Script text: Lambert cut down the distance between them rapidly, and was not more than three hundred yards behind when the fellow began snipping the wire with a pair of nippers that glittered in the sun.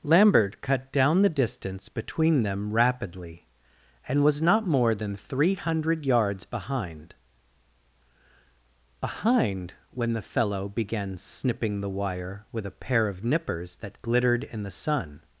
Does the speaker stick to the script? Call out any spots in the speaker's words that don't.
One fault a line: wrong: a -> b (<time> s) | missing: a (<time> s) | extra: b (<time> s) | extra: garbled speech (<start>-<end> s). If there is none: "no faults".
extra: behind (9.0 s)